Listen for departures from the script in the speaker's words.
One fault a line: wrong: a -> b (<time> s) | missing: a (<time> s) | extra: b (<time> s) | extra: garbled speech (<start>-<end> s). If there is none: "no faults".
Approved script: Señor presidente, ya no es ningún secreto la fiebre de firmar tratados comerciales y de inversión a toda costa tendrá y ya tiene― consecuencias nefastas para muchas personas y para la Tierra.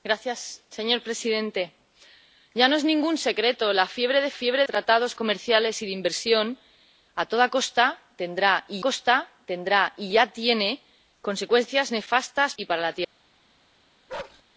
wrong: firmar -> fiebre (4.3 s)
extra: costa tendrá y (8.8 s)
missing: para muchas personas (12.5 s)